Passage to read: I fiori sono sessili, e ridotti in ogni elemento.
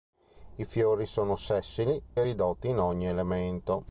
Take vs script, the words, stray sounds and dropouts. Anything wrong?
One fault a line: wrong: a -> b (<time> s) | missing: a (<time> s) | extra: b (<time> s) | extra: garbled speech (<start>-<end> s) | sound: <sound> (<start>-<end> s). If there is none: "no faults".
no faults